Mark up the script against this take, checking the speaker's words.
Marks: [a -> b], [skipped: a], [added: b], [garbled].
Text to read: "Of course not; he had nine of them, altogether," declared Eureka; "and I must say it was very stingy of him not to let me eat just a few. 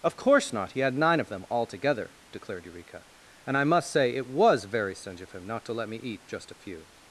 "Of course not; he had nine of them, altogether," declared Eureka; "and I must say it was very stingy of him not to let me eat just a few.